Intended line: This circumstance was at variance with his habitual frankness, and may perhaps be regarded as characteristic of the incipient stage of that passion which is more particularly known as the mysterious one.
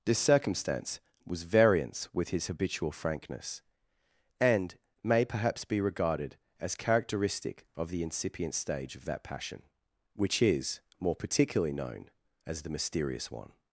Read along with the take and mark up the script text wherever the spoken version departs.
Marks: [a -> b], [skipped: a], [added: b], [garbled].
This circumstance was [skipped: at] variance with his habitual frankness, and may perhaps be regarded as characteristic of the incipient stage of that passion which is more particularly known as the mysterious one.